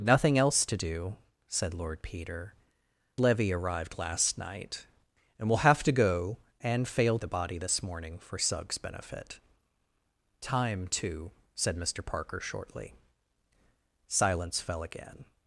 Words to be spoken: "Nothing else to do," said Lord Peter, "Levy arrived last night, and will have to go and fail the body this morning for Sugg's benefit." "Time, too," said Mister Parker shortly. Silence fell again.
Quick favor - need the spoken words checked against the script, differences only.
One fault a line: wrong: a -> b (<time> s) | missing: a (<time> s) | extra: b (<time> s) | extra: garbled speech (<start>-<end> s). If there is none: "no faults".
no faults